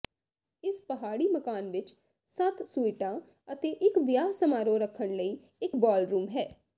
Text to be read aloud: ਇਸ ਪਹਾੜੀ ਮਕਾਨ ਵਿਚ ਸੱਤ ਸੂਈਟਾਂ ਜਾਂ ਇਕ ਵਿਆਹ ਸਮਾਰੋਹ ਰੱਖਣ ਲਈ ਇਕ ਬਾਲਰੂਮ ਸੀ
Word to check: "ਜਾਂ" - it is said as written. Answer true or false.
false